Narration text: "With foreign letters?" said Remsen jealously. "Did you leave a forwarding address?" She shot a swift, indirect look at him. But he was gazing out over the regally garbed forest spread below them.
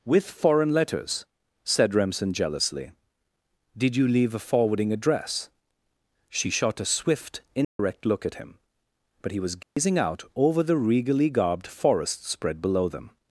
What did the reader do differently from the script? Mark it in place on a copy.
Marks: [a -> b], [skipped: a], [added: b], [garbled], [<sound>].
"With foreign letters?" said Remsen jealously. "Did you leave a forwarding address?" She shot a swift, indirect [dropout] look at him. But he was gazing [dropout] out over the regally garbed forest spread below them.